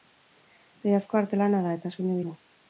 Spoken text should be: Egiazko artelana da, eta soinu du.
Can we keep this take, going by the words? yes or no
yes